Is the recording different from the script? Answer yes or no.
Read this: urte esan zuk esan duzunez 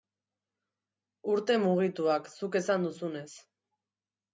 yes